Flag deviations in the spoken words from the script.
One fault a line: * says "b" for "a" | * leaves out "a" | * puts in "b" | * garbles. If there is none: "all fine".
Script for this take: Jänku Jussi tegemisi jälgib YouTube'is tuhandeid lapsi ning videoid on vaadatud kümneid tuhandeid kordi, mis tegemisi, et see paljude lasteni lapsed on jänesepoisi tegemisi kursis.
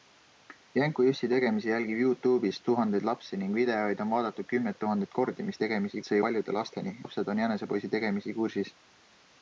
all fine